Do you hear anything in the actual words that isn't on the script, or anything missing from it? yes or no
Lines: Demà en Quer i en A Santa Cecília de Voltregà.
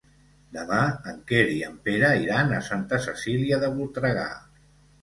yes